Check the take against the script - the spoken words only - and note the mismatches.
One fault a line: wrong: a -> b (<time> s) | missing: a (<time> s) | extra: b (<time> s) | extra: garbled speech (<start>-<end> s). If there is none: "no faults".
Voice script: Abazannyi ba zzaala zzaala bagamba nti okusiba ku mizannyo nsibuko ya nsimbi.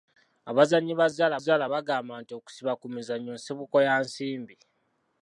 no faults